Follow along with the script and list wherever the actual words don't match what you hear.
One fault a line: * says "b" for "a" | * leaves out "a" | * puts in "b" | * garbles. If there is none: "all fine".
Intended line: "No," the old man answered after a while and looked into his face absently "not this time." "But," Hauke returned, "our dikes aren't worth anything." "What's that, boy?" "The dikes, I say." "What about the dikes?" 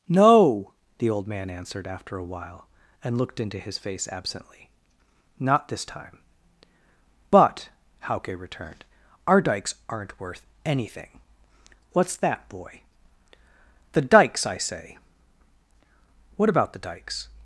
all fine